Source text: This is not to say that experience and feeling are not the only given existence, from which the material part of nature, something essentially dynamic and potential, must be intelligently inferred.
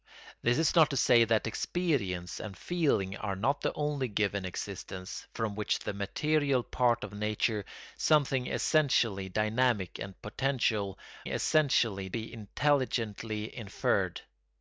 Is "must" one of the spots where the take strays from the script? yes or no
yes